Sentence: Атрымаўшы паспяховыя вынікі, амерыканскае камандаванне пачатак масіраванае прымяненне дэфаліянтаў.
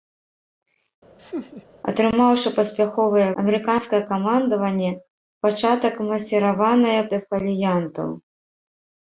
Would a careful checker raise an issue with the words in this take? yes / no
yes